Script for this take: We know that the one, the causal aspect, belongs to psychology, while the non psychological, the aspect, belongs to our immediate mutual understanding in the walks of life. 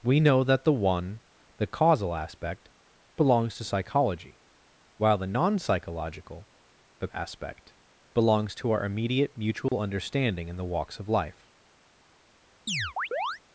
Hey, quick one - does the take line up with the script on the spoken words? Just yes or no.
yes